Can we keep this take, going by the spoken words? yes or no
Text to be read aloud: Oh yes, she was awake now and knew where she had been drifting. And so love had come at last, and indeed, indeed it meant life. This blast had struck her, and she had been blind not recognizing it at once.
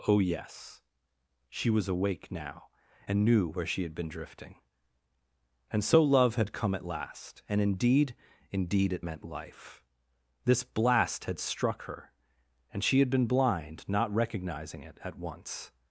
yes